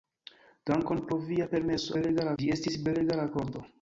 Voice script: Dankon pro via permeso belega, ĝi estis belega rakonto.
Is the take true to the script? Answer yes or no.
yes